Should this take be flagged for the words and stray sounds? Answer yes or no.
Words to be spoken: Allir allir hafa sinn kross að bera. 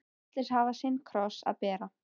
yes